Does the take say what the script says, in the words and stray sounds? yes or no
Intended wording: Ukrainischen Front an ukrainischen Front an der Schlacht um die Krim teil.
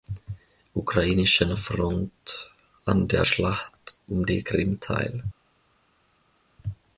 no